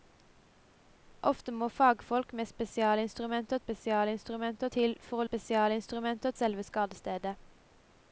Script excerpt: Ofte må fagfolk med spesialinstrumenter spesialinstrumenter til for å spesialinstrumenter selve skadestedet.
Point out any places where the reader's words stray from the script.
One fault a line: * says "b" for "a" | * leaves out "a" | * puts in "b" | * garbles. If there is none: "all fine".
all fine